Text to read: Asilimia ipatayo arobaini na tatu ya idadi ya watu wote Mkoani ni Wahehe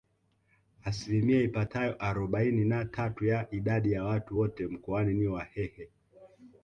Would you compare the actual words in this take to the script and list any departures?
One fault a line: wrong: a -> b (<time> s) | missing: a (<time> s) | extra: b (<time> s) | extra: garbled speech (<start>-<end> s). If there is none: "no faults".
no faults